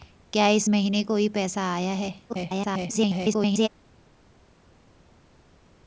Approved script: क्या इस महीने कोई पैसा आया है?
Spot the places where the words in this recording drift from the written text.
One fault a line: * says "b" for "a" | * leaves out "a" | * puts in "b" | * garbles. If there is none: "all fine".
* garbles